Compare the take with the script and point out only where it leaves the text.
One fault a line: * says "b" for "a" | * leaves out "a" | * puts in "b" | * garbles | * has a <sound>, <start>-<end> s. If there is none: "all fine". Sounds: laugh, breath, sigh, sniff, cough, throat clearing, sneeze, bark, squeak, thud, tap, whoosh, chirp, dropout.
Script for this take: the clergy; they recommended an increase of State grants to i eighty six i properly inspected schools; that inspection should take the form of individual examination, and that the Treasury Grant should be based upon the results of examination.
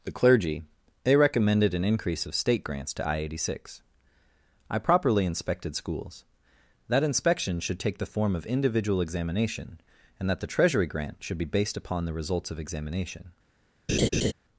* has a laugh, 13.9-14.3 s